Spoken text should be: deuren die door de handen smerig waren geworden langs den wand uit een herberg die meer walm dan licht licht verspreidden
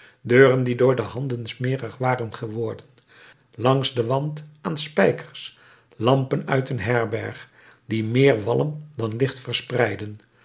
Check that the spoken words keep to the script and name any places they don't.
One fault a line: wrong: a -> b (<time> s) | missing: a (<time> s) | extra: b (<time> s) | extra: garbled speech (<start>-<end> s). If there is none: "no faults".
extra: aan spijkers lampen (4.6 s)
missing: licht (9.4 s)